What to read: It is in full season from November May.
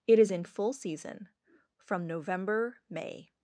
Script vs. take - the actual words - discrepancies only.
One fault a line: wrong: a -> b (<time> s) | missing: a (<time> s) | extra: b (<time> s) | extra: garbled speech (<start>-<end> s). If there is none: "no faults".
no faults